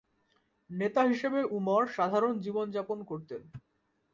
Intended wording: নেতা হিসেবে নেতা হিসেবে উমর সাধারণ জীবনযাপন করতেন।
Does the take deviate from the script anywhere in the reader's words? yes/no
yes